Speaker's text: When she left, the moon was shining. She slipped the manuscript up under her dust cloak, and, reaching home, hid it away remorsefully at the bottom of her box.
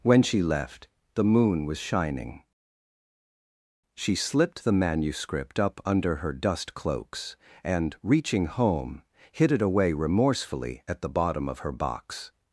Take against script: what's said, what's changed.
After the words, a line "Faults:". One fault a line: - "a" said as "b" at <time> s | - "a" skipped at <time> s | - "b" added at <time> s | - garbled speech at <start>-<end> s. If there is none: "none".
When she left, the moon was shining. She slipped the manuscript up under her dust cloaks, and, reaching home, hid it away remorsefully at the bottom of her box.
Faults:
- "cloak" said as "cloaks" at 6.7 s